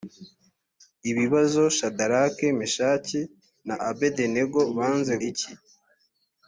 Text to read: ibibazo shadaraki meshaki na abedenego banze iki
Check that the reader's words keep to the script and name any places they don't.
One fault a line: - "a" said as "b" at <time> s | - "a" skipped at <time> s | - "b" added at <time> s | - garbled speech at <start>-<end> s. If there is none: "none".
none